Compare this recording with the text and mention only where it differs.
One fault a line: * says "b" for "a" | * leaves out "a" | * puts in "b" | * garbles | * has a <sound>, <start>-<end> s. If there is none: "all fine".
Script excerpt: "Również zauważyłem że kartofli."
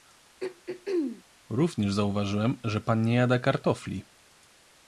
* has a throat clearing, 0.4-1.2 s
* puts in "pan nie jada"